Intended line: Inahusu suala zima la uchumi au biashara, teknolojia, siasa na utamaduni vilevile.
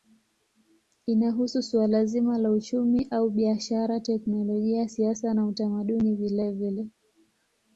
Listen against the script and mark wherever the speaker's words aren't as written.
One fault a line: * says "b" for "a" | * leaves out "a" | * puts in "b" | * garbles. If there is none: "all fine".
all fine